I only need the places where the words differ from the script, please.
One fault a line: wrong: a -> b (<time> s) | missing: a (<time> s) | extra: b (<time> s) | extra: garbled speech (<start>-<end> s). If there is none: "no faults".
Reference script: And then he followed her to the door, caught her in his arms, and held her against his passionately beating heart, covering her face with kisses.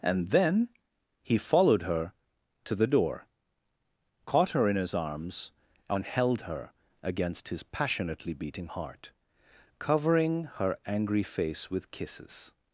extra: angry (10.9 s)